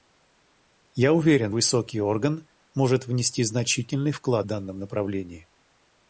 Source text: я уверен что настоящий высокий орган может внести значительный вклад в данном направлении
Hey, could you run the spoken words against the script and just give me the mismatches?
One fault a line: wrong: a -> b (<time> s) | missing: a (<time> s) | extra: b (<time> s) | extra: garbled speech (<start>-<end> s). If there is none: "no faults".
missing: что настоящий (1.5 s)
missing: в (4.5 s)